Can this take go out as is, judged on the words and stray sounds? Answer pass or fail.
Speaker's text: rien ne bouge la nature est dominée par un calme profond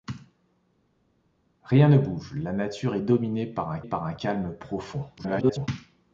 fail